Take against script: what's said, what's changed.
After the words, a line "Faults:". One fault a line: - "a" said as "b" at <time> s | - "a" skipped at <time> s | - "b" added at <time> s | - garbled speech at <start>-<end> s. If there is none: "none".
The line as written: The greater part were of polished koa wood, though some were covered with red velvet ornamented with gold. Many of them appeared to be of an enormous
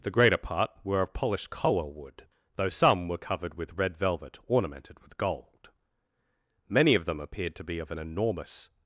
The greater part were of polished koa wood, though some were covered with red velvet ornamented with gold. Many of them appeared to be of an enormous
Faults:
none